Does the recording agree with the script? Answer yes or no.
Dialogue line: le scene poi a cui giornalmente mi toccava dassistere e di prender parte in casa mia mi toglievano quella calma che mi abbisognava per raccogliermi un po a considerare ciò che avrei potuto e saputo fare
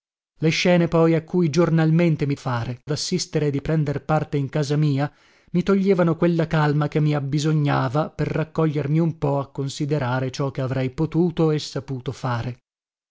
no